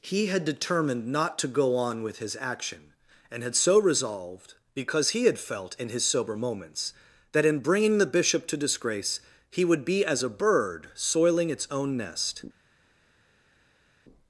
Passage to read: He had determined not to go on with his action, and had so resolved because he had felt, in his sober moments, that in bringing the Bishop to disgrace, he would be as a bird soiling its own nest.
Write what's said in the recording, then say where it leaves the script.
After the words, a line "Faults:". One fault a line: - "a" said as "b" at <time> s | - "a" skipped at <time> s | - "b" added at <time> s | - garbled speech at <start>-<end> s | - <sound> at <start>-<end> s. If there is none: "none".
He had determined not to go on with his action, and had so resolved because he had felt, in his sober moments, that in bringing the Bishop to disgrace, he would be as a bird soiling its own nest.
Faults:
none